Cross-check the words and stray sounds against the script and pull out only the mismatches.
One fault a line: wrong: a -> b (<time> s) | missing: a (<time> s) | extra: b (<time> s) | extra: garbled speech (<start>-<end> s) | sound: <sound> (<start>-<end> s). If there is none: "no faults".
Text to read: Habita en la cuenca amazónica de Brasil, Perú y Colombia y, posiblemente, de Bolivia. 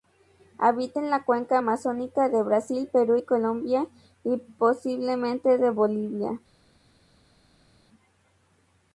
no faults